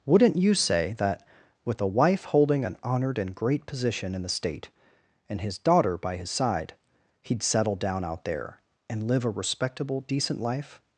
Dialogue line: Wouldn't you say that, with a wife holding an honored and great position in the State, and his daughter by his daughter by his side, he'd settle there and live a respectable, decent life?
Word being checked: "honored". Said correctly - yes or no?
yes